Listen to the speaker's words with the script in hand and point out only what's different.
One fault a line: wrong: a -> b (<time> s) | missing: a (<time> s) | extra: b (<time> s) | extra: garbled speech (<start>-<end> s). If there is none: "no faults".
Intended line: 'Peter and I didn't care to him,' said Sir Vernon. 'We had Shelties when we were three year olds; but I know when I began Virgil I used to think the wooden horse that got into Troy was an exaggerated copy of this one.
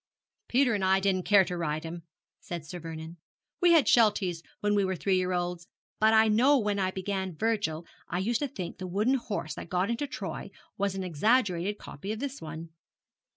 extra: ride (1.6 s)